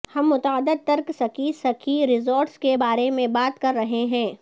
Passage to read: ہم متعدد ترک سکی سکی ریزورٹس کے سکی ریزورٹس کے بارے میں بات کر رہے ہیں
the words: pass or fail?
fail